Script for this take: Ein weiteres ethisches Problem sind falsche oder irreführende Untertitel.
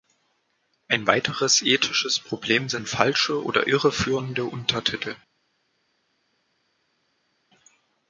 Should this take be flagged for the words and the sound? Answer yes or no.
no